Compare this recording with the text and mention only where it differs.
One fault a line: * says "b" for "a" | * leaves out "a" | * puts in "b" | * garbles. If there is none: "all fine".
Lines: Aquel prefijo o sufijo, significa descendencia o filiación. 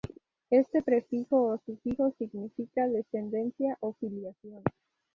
* says "Este" for "Aquel"